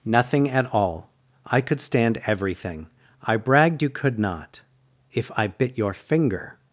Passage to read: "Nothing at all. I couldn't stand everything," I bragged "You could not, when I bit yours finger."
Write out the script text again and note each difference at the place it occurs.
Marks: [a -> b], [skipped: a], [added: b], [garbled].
"Nothing at all. I [couldn't -> could] stand everything," I bragged "You could not, [when -> if] I bit [yours -> your] finger."